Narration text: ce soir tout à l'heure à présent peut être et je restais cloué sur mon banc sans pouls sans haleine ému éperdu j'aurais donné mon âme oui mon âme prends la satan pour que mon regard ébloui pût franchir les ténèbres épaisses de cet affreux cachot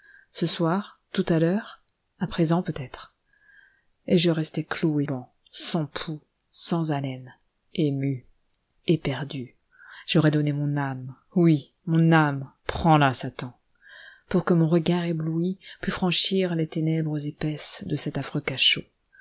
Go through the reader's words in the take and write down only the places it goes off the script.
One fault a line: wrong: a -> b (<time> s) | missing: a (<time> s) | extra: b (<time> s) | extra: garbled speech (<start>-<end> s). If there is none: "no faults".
missing: sur mon (5.0 s)